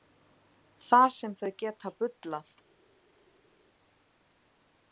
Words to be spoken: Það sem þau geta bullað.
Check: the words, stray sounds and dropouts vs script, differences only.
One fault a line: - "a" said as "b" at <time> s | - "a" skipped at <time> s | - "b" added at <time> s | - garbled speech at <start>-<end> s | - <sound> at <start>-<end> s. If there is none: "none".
none